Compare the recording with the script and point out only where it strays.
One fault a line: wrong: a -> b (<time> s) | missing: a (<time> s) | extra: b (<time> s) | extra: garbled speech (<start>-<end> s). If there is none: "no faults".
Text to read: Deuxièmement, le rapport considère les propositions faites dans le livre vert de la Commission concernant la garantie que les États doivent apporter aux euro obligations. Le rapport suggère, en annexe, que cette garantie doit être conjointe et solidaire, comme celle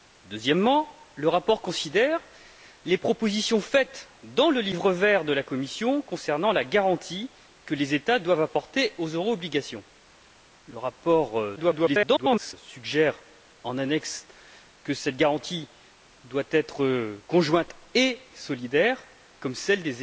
extra: garbled speech (11.6-12.5 s)